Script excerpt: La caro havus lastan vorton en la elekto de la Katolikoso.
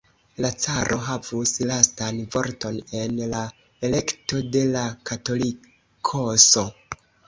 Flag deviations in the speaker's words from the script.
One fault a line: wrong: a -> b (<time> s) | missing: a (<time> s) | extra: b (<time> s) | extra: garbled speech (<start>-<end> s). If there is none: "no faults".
no faults